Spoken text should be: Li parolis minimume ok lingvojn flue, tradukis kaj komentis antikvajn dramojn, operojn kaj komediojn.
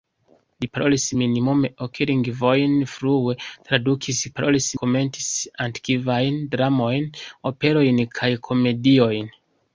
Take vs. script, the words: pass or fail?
fail